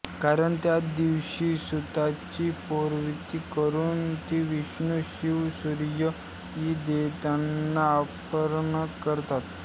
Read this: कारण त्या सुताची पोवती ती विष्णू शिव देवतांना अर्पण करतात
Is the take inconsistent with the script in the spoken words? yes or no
yes